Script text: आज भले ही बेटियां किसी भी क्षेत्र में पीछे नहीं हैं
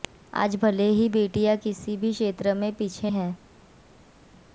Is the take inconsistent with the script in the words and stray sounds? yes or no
yes